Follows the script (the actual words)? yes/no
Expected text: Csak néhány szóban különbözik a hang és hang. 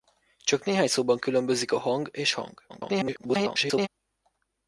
no